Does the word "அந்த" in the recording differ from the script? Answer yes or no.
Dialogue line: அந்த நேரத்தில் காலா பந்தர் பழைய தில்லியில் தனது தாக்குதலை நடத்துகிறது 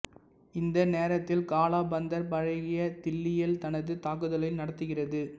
yes